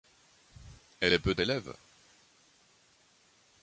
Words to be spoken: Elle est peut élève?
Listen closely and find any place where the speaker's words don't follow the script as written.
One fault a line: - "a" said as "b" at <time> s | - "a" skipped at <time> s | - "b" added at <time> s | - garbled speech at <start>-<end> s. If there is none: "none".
none